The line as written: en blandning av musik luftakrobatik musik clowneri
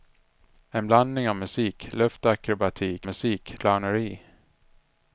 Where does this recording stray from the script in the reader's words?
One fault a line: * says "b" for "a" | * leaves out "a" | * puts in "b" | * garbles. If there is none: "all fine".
all fine